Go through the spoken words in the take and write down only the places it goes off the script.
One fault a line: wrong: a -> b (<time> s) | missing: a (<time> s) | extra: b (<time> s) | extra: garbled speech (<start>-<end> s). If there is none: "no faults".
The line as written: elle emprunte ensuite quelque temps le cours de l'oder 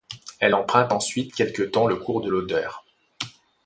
no faults